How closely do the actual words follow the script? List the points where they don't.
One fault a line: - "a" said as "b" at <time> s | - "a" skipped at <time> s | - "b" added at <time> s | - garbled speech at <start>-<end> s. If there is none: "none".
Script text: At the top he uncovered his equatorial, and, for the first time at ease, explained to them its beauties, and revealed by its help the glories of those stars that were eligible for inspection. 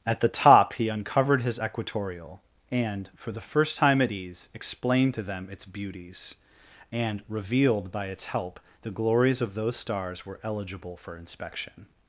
- "that" skipped at 10.3 s